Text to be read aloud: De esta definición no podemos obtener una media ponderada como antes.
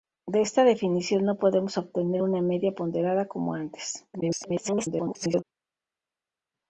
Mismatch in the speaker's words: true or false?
true